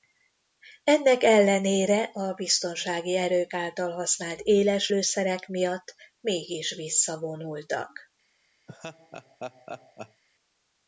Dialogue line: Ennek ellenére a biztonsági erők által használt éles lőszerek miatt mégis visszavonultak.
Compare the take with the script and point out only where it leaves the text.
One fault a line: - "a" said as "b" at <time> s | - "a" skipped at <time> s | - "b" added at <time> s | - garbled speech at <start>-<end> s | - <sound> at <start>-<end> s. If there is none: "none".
- laugh at 8.7-10.2 s